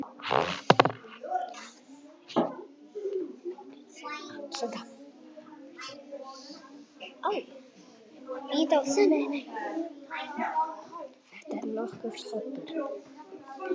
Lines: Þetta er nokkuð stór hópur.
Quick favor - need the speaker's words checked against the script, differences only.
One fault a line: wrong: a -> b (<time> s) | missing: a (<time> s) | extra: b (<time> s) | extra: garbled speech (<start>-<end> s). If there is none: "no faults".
missing: stór (12.2 s)